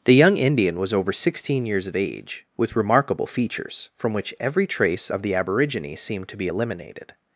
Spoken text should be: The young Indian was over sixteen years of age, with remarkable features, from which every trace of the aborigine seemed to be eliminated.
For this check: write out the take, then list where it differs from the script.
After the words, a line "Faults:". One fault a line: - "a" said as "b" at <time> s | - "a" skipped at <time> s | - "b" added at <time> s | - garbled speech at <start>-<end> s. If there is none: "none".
The young Indian was over sixteen years of age, with remarkable features, from which every trace of the aborigine seemed to be eliminated.
Faults:
none